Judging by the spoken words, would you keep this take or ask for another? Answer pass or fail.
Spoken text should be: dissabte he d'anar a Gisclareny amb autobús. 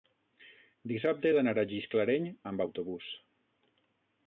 pass